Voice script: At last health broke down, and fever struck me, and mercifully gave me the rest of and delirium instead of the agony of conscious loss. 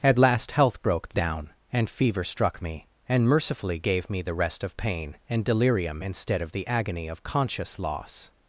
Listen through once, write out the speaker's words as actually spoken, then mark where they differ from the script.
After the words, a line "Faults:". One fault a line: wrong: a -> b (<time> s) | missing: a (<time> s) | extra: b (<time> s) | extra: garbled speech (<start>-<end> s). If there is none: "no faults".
At last health broke down, and fever struck me, and mercifully gave me the rest of pain and delirium instead of the agony of conscious loss.
Faults:
extra: pain (4.8 s)